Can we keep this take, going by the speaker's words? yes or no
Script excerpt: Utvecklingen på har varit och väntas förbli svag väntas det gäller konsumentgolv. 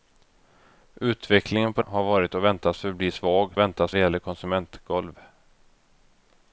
yes